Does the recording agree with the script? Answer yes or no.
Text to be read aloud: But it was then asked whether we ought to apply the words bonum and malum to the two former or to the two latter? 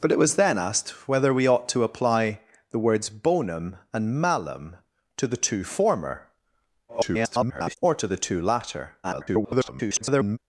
no